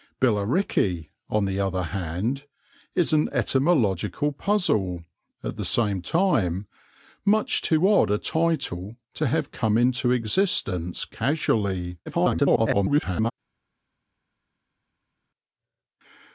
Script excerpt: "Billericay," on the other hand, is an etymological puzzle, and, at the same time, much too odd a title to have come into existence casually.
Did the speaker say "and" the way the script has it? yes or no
no